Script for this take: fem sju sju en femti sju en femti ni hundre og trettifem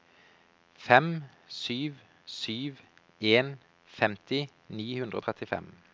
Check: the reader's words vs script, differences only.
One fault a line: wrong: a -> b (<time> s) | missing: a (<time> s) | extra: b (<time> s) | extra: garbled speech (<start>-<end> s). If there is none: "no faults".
missing: sju en femti (4.5 s)